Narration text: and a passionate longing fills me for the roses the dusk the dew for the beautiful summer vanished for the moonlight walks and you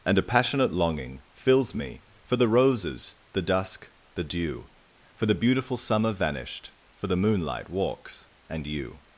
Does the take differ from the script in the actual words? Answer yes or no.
no